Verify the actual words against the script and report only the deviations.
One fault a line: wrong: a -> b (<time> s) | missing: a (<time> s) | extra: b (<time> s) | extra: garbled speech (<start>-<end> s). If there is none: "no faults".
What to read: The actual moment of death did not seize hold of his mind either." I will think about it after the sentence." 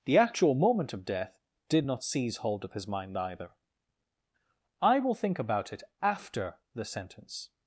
no faults